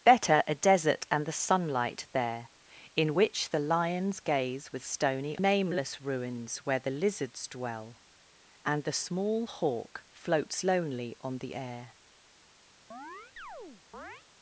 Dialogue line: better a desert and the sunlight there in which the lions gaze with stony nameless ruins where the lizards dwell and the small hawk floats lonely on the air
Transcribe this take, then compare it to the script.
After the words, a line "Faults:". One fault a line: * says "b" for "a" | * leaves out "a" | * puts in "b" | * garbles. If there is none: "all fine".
better a desert and the sunlight there in which the lions gaze with stony nameless ruins where the lizards dwell and the small hawk floats lonely on the air
Faults:
all fine